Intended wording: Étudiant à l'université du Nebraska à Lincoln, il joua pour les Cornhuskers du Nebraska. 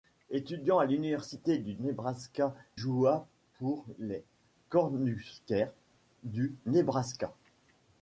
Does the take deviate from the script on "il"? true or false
true